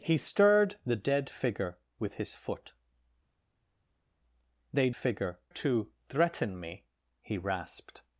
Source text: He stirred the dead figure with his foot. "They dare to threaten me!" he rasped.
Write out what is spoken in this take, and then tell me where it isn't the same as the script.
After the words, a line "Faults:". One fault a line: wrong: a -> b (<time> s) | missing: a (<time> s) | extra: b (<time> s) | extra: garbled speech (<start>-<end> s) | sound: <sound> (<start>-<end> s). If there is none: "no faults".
He stirred the dead figure with his foot. "They figure to threaten me!" he rasped.
Faults:
wrong: dare -> figure (4.9 s)